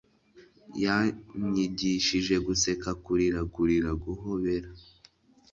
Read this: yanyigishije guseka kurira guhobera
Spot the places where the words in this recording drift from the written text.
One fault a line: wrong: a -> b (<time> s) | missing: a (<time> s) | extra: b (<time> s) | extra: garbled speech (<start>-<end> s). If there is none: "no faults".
extra: kurira (3.5 s)